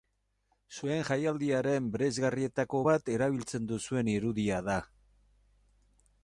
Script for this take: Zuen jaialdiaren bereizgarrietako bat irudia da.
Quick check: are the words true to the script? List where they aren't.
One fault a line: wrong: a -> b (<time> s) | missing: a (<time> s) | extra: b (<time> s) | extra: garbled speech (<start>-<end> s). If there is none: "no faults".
extra: erabiltzen duzuen (3.2 s)